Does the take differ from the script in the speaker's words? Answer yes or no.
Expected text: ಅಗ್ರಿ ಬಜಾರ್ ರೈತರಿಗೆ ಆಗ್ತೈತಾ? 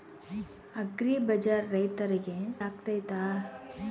no